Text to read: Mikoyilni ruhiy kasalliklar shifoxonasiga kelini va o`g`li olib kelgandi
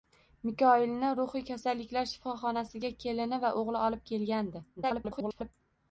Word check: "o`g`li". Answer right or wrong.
right